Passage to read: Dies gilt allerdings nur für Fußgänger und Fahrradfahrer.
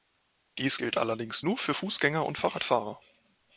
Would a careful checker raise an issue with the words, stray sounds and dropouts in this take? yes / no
no